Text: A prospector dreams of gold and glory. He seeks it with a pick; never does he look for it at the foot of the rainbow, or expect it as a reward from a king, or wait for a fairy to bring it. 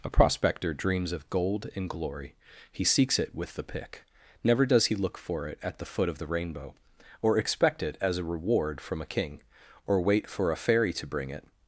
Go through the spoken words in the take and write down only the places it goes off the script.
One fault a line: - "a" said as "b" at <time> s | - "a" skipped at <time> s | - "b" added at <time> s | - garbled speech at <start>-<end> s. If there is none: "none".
- "a" said as "the" at 3.5 s